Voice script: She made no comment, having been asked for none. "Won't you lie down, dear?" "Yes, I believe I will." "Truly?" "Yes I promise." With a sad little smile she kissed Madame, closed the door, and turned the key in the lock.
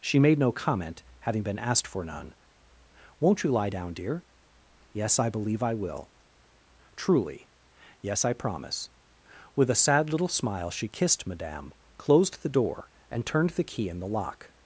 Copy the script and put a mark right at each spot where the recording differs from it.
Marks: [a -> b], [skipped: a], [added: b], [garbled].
She made no comment, having been asked for none. "Won't you lie down, dear?" "Yes, I believe I will." "Truly?" "Yes I promise." With a sad little smile she kissed Madame, closed the door, and turned the key in the lock.